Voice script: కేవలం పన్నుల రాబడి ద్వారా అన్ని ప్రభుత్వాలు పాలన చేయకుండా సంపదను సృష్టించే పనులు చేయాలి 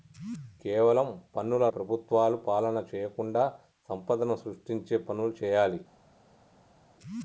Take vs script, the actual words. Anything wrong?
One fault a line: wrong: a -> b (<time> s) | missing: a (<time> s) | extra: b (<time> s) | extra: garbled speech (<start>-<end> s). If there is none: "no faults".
missing: రాబడి ద్వారా అన్ని (1.6 s)